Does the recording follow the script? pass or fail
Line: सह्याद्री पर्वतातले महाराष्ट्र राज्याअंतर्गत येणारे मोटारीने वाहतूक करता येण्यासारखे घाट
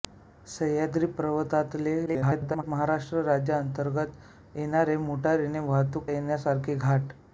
fail